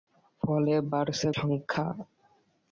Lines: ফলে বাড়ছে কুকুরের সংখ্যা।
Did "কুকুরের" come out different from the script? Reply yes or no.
yes